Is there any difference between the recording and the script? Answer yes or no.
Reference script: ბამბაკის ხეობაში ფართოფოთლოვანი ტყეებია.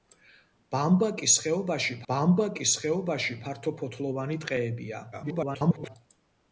yes